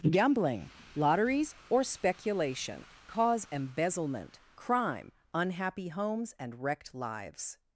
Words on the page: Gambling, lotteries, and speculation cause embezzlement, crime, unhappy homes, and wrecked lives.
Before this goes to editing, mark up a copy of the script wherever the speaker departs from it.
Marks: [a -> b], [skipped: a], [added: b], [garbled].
Gambling, lotteries, [and -> or] speculation cause embezzlement, crime, unhappy homes, and wrecked lives.